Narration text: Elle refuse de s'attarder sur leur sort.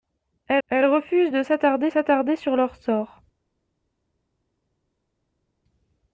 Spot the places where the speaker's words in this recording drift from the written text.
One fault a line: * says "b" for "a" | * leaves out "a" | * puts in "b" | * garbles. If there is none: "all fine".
* puts in "elle"
* puts in "s'attarder"